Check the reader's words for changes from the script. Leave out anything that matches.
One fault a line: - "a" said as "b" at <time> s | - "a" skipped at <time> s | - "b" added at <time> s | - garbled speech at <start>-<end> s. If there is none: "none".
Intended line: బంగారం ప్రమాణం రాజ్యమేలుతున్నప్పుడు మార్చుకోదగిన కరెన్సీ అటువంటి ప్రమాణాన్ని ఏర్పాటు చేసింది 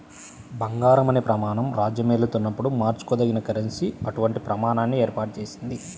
- "అనే" added at 1.1 s